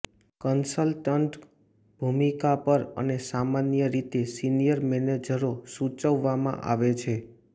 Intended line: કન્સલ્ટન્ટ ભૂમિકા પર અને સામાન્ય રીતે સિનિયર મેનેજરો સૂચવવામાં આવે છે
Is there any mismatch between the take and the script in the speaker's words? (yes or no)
no